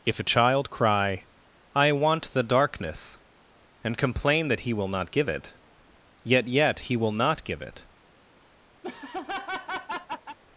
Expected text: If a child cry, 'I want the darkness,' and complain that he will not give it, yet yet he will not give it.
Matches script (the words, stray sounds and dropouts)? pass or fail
fail